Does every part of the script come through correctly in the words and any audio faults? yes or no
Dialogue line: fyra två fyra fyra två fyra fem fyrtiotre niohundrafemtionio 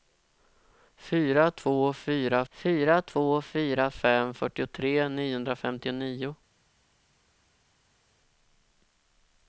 yes